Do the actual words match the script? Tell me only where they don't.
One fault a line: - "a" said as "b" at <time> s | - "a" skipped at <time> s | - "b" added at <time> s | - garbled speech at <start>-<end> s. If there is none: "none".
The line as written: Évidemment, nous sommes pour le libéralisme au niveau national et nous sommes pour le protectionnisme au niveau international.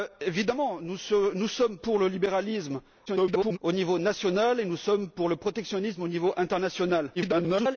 - garbled speech at 3.1-3.6 s
- garbled speech at 7.2-7.8 s